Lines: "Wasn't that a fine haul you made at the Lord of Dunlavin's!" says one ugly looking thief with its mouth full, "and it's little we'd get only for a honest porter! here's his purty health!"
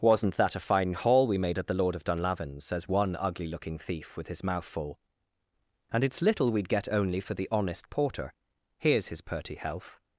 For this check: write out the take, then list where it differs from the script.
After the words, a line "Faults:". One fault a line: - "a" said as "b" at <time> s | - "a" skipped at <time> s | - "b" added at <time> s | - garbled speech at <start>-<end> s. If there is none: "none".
"Wasn't that a fine haul we made at the Lord of Dunlavin's!" says one ugly looking thief with his mouth full, "and it's little we'd get only for the honest porter! here's his purty health!"
Faults:
- "you" said as "we" at 1.3 s
- "its" said as "his" at 4.3 s
- "a" said as "the" at 7.3 s